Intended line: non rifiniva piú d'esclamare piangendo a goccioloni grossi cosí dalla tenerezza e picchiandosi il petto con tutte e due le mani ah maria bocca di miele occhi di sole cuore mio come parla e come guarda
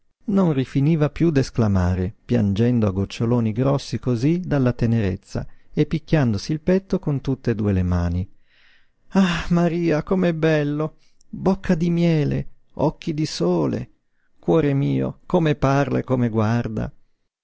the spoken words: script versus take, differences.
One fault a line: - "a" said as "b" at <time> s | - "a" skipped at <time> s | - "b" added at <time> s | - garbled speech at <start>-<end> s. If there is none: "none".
- "com'è bello" added at 10.0 s